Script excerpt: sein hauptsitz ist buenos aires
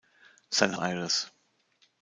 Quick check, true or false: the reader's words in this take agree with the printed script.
false